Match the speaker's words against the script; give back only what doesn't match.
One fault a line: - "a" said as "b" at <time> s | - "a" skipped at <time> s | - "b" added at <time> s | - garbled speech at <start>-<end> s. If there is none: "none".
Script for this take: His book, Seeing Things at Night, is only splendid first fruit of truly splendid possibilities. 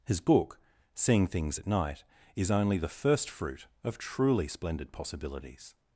- "splendid" said as "the" at 2.8 s